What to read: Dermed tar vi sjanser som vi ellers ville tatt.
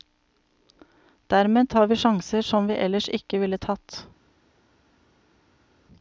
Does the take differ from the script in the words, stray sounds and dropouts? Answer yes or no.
yes